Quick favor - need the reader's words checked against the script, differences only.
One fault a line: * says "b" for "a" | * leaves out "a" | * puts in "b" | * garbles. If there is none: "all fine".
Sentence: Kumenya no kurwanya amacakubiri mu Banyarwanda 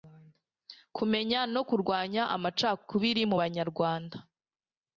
all fine